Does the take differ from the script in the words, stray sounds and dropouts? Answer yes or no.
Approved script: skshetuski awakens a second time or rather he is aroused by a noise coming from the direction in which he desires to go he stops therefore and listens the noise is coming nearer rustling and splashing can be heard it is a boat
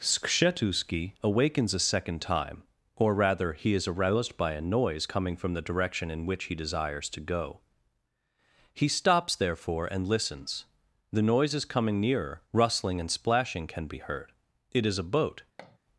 yes